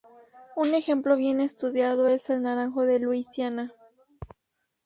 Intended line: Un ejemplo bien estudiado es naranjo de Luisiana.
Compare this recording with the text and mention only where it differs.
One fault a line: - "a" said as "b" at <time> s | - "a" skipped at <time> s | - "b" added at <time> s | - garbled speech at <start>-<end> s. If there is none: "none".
- "el" added at 2.3 s